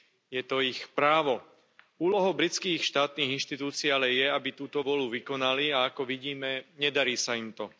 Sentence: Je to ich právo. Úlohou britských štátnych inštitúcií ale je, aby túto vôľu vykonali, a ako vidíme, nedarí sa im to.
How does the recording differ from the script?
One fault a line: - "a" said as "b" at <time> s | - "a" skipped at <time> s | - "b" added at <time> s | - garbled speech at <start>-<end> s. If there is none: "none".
none